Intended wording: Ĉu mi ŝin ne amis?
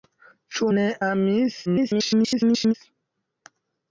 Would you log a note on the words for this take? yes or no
yes